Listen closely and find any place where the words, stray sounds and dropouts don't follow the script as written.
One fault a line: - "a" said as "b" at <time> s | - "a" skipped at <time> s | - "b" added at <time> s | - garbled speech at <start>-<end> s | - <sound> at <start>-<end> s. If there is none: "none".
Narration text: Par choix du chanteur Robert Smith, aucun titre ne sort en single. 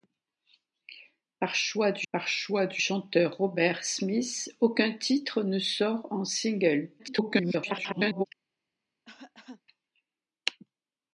- "par choix du" added at 2.1 s
- garbled speech at 7.0-8.3 s
- cough at 9.0-9.6 s